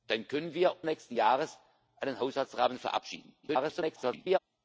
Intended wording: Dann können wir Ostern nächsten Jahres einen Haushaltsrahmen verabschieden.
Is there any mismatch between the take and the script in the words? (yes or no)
yes